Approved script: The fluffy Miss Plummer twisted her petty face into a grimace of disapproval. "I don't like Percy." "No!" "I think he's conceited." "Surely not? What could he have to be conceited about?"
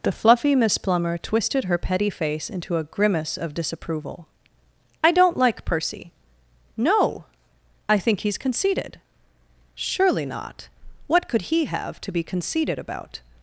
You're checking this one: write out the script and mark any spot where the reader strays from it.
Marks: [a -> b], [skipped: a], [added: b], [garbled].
The fluffy Miss Plummer twisted her petty face into a grimace of disapproval. "I don't like Percy." "No!" "I think he's conceited." "Surely not? What could he have to be conceited about?"